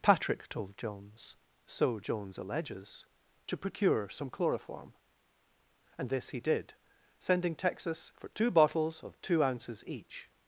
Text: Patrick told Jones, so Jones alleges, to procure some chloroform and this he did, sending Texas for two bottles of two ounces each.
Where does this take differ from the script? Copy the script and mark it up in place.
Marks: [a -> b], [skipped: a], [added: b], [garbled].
Patrick told Jones, so Jones alleges, to procure some chloroform and this he did, sending Texas for two bottles of two ounces each.